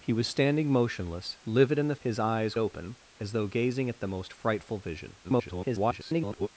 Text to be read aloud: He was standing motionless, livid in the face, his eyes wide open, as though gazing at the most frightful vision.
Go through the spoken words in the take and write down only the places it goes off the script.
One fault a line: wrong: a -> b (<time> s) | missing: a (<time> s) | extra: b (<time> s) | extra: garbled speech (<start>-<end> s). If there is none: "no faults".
missing: face (1.9 s)
missing: wide (2.6 s)
extra: garbled speech (5.2-6.5 s)